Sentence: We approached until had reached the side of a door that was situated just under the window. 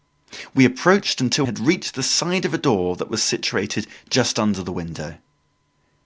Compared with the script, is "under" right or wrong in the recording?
right